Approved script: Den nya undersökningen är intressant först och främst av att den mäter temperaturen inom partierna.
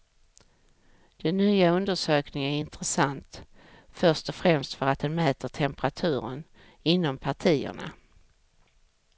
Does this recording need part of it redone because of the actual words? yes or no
yes